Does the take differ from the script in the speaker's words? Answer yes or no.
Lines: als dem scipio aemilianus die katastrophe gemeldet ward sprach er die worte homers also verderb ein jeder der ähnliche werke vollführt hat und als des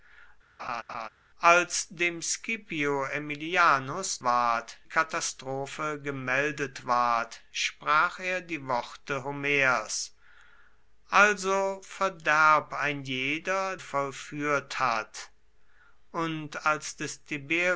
yes